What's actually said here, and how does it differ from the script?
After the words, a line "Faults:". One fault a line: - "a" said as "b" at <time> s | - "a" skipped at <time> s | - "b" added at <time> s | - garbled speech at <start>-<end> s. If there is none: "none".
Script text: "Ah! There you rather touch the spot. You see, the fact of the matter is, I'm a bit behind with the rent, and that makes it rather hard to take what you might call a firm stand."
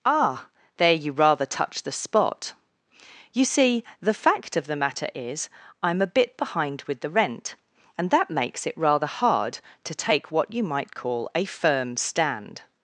"Ah! There you rather touch the spot. You see, the fact of the matter is, I'm a bit behind with the rent, and that makes it rather hard to take what you might call a firm stand."
Faults:
none